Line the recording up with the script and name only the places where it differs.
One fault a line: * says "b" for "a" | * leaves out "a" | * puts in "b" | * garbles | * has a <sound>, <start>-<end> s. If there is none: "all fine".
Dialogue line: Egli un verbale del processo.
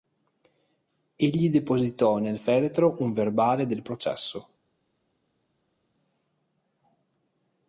* puts in "depositò nel feretro"